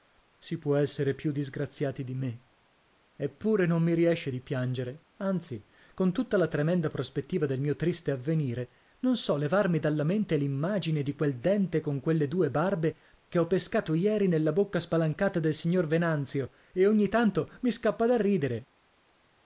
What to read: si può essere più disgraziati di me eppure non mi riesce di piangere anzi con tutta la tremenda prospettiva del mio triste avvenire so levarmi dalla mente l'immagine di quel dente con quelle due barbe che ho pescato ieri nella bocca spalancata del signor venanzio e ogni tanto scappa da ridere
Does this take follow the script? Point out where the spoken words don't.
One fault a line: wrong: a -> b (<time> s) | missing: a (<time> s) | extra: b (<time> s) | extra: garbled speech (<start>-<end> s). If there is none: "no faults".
extra: non (9.0 s)
extra: mi (17.6 s)